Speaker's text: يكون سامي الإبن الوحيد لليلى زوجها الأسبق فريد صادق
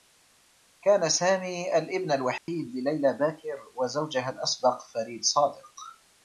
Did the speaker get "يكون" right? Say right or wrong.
wrong